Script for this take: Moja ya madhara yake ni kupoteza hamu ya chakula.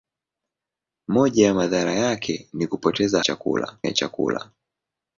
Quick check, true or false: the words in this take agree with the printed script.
false